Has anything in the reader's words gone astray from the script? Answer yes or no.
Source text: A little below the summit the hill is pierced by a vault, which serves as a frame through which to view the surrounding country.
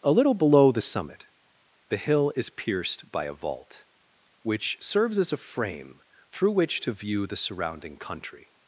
no